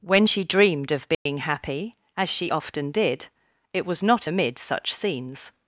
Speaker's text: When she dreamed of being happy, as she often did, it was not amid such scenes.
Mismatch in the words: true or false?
false